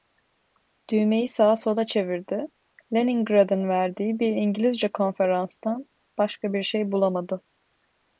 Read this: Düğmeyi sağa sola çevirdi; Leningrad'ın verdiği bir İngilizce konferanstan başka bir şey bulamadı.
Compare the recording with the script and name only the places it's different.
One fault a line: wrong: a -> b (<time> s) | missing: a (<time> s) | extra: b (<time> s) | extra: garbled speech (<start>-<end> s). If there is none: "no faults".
no faults